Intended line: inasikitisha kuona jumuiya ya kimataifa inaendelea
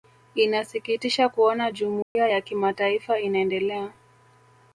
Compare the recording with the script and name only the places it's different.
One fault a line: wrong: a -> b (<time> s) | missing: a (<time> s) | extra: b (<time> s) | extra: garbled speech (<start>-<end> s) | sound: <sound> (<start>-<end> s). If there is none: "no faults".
sound: dropout (2.0-2.2 s)